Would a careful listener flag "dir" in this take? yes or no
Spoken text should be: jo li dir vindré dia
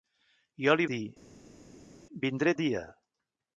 no